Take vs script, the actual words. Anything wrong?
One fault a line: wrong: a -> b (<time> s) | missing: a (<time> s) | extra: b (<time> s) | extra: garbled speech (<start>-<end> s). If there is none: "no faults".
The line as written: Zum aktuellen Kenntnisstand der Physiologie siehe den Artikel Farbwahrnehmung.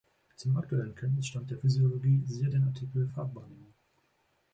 no faults